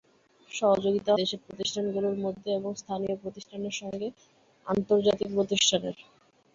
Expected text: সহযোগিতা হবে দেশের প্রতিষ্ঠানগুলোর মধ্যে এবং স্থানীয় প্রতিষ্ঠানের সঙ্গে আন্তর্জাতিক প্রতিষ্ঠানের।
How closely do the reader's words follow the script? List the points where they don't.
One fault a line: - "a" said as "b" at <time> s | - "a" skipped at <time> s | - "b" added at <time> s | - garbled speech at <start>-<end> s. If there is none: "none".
- "হবে" skipped at 1.1 s